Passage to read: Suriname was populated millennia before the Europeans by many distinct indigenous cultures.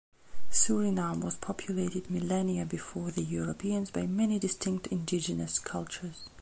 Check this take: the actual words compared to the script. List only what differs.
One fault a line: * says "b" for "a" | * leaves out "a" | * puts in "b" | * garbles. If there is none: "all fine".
all fine